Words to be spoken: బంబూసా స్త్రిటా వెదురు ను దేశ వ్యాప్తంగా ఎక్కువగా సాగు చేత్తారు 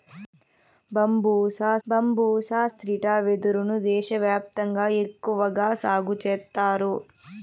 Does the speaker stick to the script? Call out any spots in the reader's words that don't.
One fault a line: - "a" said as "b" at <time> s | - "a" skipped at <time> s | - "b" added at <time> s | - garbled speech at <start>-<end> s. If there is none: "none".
- "బంబూసా" added at 1.9 s